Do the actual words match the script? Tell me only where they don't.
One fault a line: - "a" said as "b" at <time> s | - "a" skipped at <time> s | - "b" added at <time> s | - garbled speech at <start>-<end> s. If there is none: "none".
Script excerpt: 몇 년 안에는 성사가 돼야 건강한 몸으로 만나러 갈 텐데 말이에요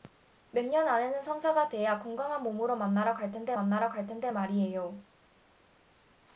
- "만나러 갈 텐데" added at 3.5 s